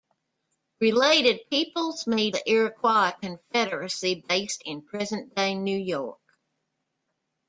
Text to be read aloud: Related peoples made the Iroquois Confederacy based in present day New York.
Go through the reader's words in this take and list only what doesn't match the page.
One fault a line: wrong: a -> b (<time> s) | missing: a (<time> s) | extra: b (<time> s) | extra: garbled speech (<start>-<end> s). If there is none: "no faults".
no faults